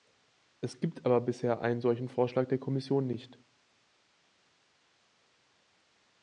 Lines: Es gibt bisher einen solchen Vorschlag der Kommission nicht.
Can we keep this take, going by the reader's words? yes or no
no